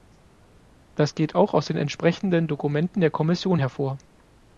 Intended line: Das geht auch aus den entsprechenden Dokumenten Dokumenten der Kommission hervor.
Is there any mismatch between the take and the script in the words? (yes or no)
yes